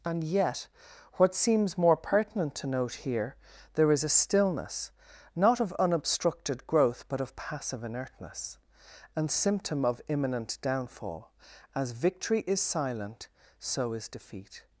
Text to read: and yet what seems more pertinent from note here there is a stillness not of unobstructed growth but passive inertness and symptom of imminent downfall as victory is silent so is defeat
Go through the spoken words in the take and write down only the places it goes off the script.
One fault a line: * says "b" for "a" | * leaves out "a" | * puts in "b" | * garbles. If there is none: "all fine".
* says "to" for "from"
* puts in "of"